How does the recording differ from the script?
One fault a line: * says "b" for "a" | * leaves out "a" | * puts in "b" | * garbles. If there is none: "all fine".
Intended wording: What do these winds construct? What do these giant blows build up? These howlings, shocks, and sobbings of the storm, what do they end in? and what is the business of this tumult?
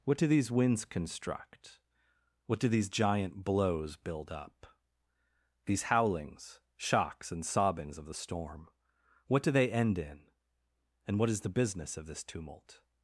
all fine